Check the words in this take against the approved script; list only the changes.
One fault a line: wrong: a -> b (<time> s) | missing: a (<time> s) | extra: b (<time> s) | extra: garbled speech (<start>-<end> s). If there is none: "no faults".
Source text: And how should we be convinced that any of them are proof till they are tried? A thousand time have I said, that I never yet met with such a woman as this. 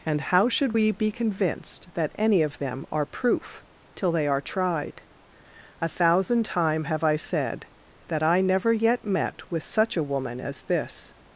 no faults